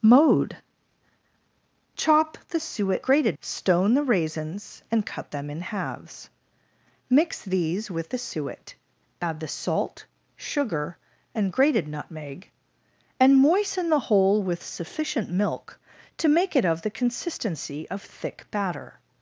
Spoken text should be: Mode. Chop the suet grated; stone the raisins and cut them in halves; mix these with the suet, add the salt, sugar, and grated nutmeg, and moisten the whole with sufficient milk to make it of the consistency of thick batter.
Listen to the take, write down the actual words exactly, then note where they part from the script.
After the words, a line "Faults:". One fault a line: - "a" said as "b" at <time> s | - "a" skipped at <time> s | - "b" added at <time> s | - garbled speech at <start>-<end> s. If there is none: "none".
Mode. Chop the suet grated; stone the raisins and cut them in halves; mix these with the suet, add the salt, sugar, and grated nutmeg, and moisten the whole with sufficient milk to make it of the consistency of thick batter.
Faults:
none